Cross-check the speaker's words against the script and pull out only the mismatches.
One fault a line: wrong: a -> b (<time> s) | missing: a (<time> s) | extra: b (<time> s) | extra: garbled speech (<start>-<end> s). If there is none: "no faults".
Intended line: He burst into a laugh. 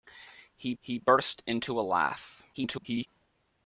extra: he (0.8 s)
extra: garbled speech (2.5-3.1 s)